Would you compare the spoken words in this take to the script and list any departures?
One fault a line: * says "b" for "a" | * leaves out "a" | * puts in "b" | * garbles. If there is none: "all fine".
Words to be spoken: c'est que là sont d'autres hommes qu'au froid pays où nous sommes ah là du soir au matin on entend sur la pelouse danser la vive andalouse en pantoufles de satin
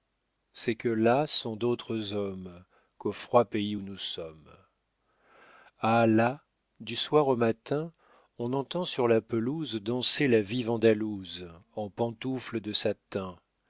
all fine